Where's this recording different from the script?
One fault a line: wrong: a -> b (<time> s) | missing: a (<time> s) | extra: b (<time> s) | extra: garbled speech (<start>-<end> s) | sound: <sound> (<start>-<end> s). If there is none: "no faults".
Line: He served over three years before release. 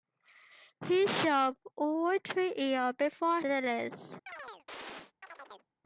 sound: chirp (4.3-5.7 s)